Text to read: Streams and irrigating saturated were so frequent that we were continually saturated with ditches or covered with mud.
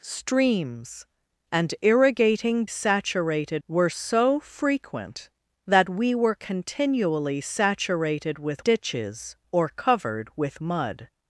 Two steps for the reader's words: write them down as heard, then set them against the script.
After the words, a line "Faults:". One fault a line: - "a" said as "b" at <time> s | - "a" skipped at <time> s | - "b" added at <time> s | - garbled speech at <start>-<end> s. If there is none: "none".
Streams and irrigating saturated were so frequent that we were continually saturated with ditches or covered with mud.
Faults:
none